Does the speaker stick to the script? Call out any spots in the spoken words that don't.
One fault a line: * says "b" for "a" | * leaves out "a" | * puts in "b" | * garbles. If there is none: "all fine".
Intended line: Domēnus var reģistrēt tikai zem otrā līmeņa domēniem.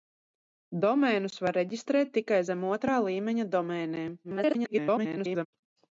* garbles